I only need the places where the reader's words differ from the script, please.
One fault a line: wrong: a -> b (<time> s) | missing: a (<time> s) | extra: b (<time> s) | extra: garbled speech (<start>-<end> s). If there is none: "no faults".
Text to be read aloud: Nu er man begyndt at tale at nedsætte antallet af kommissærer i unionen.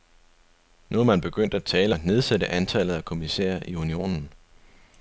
no faults